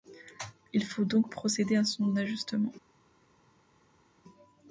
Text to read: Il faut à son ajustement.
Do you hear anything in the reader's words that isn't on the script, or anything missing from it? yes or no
yes